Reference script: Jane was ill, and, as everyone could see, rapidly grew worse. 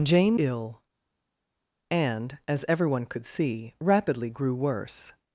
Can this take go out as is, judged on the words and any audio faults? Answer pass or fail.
fail